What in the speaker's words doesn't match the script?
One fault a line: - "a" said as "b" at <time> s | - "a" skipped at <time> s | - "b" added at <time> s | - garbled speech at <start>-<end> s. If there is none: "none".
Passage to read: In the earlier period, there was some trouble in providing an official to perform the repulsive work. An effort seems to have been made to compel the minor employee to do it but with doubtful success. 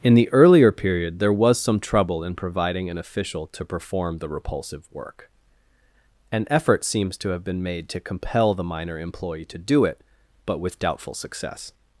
none